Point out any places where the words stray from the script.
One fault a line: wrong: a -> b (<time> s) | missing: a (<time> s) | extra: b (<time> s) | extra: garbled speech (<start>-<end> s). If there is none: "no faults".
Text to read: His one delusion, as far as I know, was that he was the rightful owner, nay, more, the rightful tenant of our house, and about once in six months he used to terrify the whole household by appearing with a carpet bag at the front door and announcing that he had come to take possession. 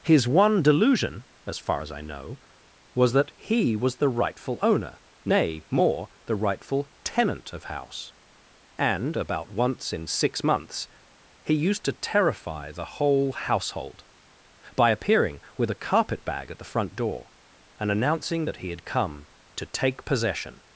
missing: our (7.7 s)